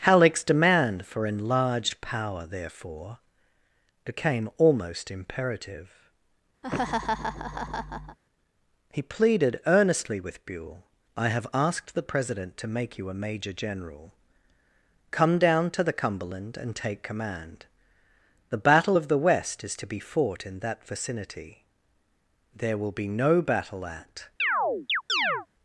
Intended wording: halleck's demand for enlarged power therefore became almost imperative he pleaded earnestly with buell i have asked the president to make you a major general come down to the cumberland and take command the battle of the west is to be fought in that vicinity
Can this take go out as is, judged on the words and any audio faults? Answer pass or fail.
fail